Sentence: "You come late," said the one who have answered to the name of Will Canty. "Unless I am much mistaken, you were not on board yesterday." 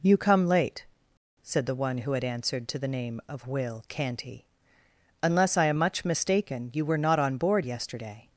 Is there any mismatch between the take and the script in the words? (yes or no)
yes